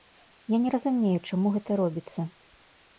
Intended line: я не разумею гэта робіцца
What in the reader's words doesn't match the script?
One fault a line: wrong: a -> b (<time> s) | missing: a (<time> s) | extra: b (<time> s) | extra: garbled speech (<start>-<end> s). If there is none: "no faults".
extra: чаму (1.3 s)